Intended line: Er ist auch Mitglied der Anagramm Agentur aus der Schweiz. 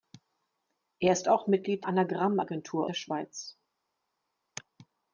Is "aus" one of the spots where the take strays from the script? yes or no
yes